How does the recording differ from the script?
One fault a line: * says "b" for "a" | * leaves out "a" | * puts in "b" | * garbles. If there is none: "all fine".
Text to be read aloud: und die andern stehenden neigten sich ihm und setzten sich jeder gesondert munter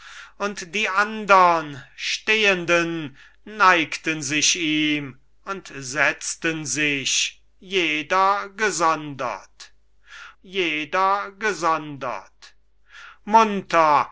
* puts in "jeder gesondert"